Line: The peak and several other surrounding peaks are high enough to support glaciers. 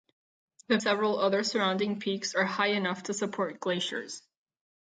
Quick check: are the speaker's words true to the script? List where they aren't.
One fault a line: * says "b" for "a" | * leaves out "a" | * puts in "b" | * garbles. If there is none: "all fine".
* leaves out "peak and"